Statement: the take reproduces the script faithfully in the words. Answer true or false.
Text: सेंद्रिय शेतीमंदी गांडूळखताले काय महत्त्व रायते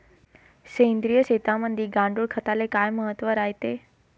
true